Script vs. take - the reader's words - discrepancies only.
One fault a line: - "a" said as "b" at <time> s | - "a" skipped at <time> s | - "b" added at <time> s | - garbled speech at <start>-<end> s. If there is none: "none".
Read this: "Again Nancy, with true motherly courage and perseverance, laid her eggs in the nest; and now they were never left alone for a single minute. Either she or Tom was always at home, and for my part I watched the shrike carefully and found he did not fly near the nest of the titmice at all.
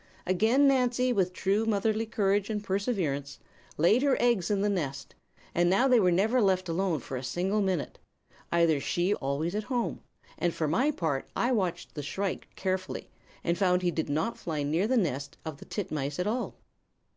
- "or Tom was" skipped at 9.1 s